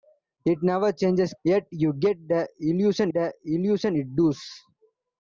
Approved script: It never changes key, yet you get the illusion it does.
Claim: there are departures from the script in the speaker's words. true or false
true